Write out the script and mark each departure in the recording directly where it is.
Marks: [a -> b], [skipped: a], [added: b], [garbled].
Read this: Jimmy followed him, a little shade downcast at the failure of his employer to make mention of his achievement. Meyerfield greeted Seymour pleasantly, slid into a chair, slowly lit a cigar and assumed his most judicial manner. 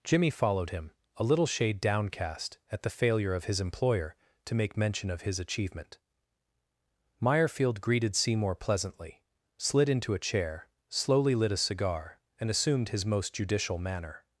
Jimmy followed him, a little shade downcast at the failure of his employer to make mention of his achievement. Meyerfield greeted Seymour pleasantly, slid into a chair, slowly lit a cigar and assumed his most judicial manner.